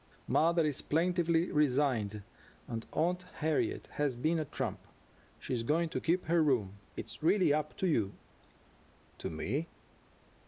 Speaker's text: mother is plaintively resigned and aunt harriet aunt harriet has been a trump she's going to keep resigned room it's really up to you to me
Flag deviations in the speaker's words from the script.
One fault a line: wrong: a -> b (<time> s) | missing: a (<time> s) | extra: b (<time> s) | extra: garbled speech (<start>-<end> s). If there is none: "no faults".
missing: aunt harriet (3.9 s)
wrong: resigned -> her (6.2 s)